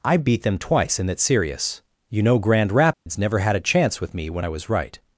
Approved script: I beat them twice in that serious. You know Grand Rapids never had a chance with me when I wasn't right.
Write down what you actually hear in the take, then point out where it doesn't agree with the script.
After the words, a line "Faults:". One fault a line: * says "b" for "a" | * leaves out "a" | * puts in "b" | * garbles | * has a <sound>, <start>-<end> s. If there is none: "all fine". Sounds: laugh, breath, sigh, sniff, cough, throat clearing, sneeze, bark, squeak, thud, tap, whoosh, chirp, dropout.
I beat them twice in that serious. You know Grand Rapids never had a chance with me when I was right.
Faults:
* has a dropout, 2.9-3.1 s
* says "was" for "wasn't"